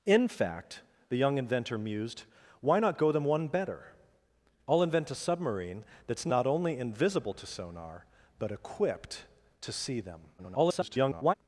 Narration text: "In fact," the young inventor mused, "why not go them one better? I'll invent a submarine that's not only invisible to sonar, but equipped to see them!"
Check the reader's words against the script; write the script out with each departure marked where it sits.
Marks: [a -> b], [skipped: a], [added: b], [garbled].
"In fact," the young inventor mused, "why not go them one better? I'll invent a submarine that's not only invisible to sonar, but equipped to see them!" [garbled]